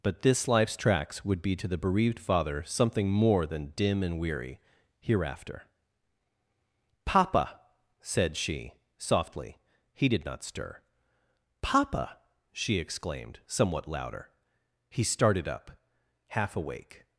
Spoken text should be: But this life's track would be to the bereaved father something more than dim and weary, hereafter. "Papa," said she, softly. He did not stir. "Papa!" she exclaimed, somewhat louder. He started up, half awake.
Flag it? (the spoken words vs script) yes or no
yes